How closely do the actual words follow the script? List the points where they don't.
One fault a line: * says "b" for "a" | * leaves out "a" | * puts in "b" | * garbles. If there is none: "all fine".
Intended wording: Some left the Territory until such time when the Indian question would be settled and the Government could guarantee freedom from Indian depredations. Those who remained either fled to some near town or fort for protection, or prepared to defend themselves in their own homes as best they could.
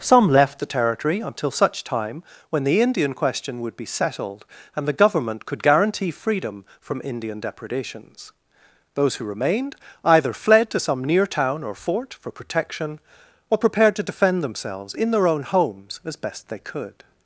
all fine